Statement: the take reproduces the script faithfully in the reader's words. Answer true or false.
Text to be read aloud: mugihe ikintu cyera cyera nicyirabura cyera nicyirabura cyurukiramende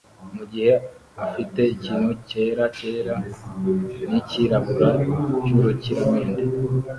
false